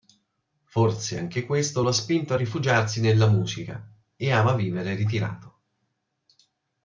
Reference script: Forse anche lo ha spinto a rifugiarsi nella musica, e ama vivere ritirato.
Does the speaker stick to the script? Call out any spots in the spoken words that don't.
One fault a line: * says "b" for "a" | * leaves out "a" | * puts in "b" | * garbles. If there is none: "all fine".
* puts in "questo"